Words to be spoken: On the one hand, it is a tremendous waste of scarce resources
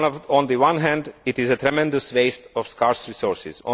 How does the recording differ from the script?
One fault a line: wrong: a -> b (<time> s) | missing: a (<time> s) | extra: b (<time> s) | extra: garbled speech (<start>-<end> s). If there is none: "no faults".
no faults